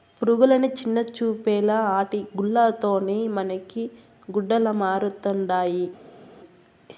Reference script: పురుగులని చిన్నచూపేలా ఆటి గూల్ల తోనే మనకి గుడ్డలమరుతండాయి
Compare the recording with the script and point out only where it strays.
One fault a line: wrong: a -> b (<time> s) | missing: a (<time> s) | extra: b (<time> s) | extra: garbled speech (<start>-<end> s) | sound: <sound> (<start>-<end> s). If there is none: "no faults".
no faults